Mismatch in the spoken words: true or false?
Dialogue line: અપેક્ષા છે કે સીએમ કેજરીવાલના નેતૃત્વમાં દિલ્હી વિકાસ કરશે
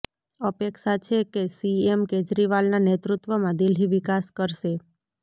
false